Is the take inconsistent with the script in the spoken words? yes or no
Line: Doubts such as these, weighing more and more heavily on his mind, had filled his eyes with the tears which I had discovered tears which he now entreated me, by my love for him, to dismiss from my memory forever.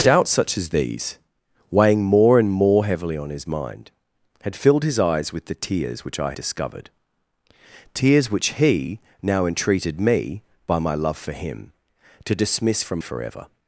yes